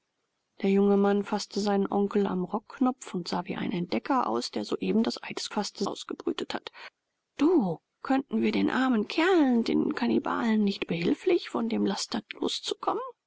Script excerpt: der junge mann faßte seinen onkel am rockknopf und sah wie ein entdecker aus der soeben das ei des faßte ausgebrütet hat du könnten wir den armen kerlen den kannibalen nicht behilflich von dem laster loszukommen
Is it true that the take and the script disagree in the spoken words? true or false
false